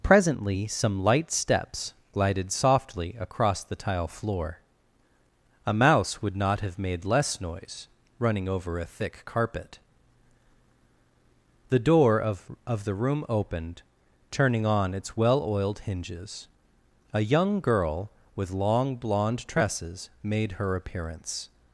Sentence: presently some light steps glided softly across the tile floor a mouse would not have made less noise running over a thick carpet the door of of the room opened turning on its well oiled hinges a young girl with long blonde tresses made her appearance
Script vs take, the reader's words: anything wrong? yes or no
no